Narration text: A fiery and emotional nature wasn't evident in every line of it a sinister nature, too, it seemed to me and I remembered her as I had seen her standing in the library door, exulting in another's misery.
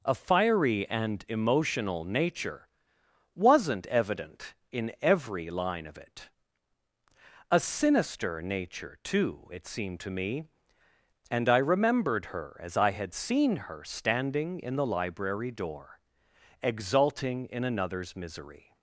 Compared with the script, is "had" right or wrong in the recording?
right